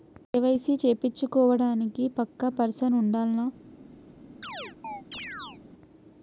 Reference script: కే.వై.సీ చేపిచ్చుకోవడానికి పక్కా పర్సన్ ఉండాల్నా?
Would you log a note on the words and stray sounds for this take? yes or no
yes